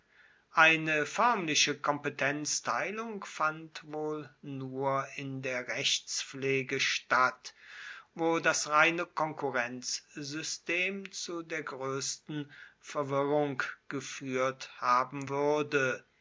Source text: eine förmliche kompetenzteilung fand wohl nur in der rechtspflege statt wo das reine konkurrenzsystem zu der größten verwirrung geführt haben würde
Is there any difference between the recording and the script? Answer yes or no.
no